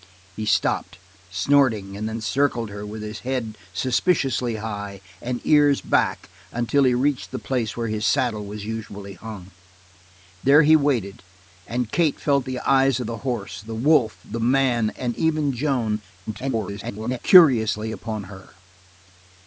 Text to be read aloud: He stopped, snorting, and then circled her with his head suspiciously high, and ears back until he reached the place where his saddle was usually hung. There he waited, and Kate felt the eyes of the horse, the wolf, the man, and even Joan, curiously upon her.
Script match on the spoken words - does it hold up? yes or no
no